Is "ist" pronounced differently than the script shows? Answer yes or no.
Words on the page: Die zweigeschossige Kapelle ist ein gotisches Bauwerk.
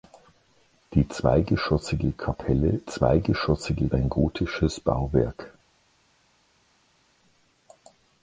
yes